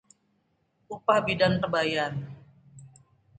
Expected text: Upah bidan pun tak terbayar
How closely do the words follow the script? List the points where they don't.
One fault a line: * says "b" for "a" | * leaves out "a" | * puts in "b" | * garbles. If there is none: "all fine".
* leaves out "pun tak"